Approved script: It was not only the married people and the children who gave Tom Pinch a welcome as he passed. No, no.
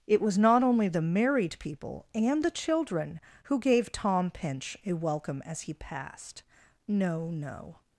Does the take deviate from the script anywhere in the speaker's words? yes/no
no